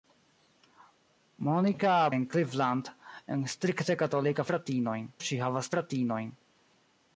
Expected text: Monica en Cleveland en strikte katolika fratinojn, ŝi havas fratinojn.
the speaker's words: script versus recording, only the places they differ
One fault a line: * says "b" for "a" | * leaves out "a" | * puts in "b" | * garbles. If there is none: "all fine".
all fine